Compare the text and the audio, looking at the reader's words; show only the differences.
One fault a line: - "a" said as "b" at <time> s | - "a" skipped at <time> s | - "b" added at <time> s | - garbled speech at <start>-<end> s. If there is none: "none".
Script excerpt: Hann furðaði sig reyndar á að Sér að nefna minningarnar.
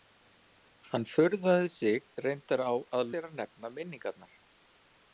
none